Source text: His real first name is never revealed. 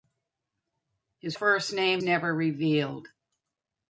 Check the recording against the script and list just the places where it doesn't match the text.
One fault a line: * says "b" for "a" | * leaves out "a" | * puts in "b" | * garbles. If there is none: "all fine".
* leaves out "real"
* leaves out "is"